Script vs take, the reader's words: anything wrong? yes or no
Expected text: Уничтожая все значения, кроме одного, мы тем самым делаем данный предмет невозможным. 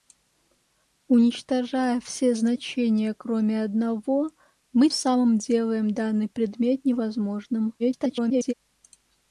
yes